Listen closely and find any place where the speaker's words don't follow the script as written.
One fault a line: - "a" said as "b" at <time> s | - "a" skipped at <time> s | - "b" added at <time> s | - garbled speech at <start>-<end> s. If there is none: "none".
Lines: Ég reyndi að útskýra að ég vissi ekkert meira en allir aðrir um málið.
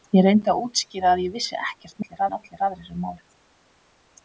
- "meira" said as "allir" at 2.0 s